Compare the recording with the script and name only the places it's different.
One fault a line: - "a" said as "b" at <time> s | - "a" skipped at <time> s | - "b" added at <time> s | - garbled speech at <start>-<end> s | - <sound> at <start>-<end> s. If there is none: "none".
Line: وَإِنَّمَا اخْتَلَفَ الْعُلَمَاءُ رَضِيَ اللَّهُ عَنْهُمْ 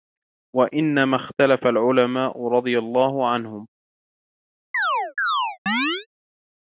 - chirp at 4.7-6.1 s